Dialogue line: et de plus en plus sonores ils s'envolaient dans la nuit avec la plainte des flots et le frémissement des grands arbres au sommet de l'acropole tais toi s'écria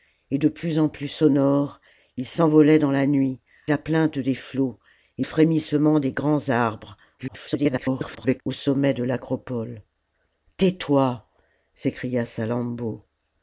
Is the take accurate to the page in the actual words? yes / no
no